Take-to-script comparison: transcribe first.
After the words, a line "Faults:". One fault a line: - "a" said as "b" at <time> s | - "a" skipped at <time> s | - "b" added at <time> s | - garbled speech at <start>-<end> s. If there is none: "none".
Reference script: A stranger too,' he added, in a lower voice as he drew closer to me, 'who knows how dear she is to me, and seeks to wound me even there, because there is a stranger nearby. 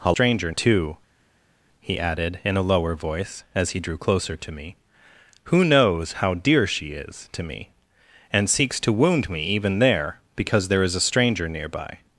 A stranger too,' he added, in a lower voice as he drew closer to me, 'who knows how dear she is to me, and seeks to wound me even there, because there is a stranger nearby.
Faults:
none